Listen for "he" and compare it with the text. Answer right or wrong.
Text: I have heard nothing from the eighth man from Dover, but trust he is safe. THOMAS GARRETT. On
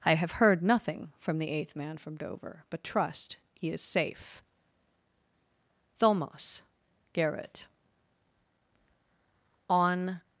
right